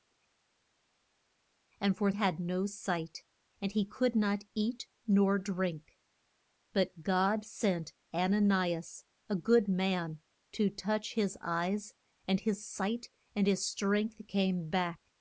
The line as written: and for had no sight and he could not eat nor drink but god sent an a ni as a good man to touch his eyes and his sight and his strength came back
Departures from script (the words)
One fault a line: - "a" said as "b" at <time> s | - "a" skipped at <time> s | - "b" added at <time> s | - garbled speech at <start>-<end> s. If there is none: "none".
none